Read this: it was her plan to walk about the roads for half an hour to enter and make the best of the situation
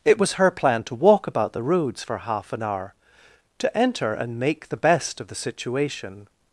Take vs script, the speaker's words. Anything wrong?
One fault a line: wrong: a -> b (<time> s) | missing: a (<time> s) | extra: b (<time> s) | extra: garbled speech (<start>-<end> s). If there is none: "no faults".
no faults